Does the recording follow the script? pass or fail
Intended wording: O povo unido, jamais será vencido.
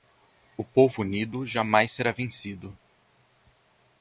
pass